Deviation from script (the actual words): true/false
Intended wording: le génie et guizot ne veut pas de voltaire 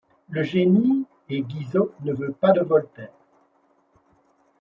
false